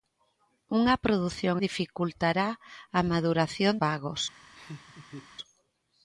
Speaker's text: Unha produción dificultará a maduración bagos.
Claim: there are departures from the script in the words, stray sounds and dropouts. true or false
true